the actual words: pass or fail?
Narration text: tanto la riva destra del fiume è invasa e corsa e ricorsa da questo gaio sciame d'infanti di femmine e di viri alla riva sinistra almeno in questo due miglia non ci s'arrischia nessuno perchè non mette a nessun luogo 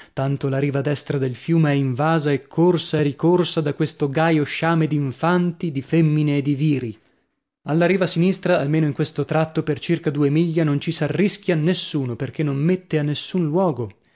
fail